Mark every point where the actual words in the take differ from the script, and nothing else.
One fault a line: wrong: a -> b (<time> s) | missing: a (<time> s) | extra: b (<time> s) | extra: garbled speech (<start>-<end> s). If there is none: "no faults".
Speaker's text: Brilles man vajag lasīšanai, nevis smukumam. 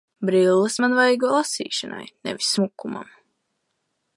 no faults